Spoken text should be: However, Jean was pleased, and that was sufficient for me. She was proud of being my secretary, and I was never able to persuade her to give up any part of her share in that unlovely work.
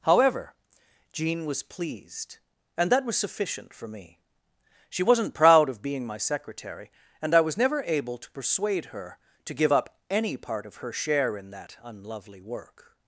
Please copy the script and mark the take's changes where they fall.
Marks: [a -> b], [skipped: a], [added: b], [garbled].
However, Jean was pleased, and that was sufficient for me. She [was -> wasn't] proud of being my secretary, and I was never able to persuade her to give up any part of her share in that unlovely work.